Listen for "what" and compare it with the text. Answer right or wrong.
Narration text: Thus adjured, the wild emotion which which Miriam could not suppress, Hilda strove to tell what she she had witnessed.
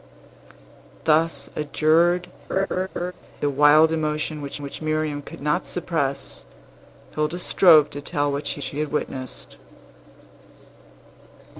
right